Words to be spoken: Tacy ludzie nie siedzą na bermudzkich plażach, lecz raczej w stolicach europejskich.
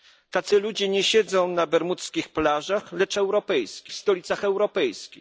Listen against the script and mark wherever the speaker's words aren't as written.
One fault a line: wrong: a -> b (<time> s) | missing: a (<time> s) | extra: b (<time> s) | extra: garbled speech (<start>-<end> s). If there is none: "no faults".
wrong: raczej -> europejskich (3.2 s)